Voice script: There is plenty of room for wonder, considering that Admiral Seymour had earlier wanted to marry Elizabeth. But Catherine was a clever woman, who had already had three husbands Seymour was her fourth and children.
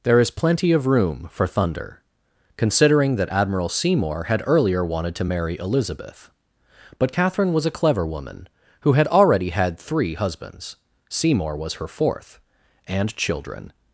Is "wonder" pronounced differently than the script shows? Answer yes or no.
yes